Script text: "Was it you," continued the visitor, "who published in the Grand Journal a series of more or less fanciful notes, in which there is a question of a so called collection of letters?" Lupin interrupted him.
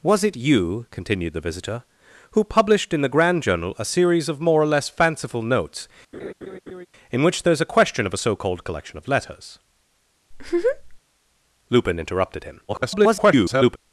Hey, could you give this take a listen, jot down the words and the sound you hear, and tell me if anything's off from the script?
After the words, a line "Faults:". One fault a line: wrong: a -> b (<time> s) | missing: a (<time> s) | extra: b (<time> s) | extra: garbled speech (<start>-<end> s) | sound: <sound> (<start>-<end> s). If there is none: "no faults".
"Was it you," continued the visitor, "who published in the Grand Journal a series of more or less fanciful notes, in which there is a question of a so called collection of letters?" Lupin interrupted him. [garbled]
Faults:
sound: laugh (6.1-6.9 s)
sound: laugh (10.3-11.0 s)
extra: garbled speech (12.7-13.8 s)